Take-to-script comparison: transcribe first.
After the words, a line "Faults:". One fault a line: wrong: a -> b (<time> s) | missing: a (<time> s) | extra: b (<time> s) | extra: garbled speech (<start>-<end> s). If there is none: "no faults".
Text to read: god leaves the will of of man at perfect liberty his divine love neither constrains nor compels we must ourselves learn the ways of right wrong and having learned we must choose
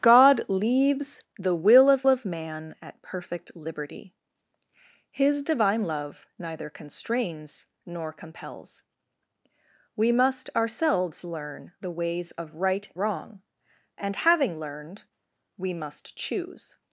god leaves the will of of man at perfect liberty his divine love neither constrains nor compels we must ourselves learn the ways of right wrong and having learned we must choose
Faults:
no faults